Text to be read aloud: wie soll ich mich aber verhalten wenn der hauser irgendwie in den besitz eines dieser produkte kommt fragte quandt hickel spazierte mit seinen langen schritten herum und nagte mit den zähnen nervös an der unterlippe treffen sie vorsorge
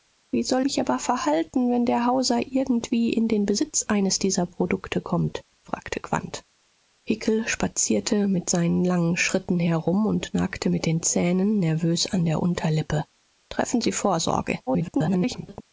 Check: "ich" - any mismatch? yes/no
yes